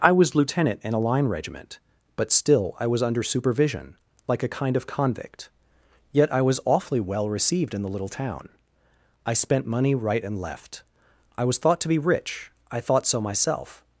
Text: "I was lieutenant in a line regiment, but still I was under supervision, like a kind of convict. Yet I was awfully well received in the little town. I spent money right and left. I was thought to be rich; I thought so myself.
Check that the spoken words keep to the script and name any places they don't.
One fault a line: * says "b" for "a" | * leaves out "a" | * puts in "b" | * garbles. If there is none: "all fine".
all fine